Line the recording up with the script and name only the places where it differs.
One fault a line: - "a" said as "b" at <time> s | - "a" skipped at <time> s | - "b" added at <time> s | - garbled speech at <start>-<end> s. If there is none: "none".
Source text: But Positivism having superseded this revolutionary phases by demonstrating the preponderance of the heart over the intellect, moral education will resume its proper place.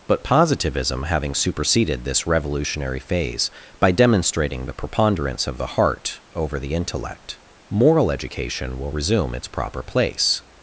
- "phases" said as "phase" at 3.0 s